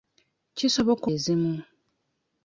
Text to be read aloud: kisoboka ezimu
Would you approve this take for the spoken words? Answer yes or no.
yes